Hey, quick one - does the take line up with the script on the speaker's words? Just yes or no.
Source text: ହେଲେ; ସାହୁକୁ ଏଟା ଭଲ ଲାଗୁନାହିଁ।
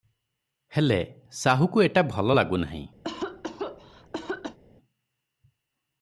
yes